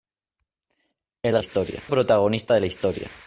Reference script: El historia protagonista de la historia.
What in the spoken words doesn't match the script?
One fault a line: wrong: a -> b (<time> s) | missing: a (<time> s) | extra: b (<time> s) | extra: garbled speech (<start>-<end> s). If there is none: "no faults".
no faults